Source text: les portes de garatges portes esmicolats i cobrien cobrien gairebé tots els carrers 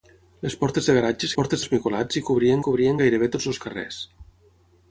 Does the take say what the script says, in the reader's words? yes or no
yes